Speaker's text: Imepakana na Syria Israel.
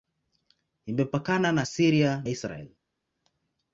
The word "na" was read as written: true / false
true